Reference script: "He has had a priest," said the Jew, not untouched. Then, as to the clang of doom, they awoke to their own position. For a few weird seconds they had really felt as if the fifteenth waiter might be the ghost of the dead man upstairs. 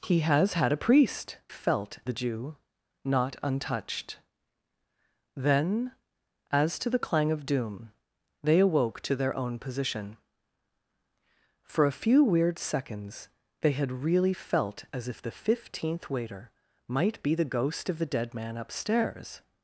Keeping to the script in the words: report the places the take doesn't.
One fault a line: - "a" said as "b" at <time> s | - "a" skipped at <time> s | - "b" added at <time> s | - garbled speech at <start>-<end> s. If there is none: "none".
- "said" said as "felt" at 1.5 s